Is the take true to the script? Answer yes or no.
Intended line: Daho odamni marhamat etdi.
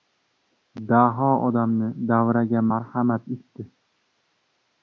no